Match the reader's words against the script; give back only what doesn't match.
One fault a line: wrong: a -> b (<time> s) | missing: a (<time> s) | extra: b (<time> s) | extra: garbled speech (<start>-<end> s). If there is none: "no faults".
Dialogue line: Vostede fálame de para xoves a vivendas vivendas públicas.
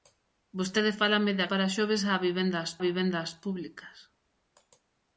no faults